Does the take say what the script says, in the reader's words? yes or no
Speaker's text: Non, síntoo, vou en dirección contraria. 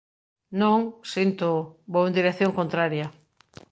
yes